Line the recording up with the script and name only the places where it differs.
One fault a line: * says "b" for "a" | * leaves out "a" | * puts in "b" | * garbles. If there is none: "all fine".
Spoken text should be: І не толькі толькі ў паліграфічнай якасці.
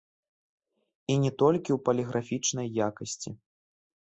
* leaves out "толькі"